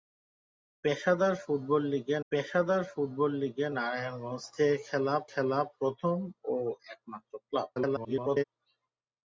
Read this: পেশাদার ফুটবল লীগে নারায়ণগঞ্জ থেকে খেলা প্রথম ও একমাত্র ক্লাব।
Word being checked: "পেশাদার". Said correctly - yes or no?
yes